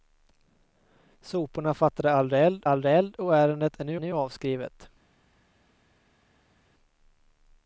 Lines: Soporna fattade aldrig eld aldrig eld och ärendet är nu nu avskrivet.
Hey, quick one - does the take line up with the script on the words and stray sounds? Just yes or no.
yes